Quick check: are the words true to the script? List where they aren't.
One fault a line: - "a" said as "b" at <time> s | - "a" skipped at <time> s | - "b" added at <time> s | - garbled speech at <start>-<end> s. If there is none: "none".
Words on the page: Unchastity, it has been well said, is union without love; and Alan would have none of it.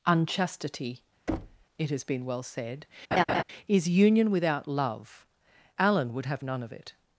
- "and" skipped at 5.2 s